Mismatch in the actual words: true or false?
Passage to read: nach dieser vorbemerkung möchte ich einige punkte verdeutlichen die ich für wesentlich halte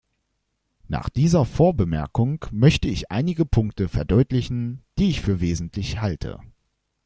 false